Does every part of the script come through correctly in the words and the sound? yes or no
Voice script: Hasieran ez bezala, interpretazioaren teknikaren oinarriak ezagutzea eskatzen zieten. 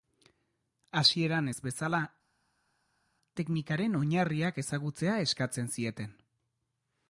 no